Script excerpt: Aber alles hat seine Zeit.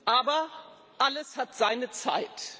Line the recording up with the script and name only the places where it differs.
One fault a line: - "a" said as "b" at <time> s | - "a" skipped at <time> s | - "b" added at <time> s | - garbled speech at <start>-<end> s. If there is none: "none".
none